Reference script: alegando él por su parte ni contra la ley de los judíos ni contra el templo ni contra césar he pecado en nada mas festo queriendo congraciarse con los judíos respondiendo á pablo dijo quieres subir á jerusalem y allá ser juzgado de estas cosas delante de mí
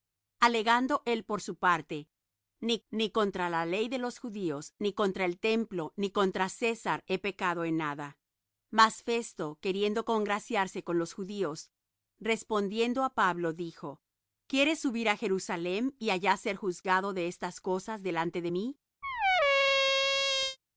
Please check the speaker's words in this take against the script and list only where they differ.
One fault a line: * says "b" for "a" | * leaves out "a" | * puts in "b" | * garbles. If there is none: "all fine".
* puts in "ni"